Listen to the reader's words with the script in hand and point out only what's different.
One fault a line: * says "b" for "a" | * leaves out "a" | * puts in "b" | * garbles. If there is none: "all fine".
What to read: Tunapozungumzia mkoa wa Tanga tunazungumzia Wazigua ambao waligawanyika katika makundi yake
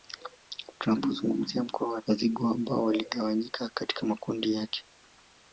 * leaves out "Tanga tunazungumzia"